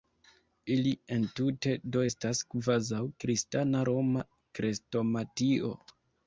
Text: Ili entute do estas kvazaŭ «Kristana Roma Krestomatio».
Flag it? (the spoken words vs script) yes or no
no